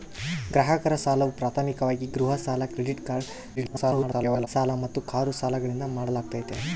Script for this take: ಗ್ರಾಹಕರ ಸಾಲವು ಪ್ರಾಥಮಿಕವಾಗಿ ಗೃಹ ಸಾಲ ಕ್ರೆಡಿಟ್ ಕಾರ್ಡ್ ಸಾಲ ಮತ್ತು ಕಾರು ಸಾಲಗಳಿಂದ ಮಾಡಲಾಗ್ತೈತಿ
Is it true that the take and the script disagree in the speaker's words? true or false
true